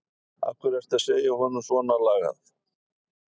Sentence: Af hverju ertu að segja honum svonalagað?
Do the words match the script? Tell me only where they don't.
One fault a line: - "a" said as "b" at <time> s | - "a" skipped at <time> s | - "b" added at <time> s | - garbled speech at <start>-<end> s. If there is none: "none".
none